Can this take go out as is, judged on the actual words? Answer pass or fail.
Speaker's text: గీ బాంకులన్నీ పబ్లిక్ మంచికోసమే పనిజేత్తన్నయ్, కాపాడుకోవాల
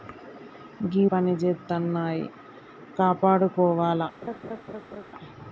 fail